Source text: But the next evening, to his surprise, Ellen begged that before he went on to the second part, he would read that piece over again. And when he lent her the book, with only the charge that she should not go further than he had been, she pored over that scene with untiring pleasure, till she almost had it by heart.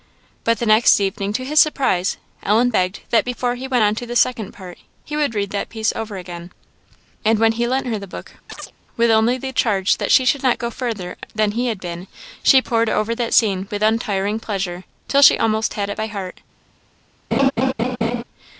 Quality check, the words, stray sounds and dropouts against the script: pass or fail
fail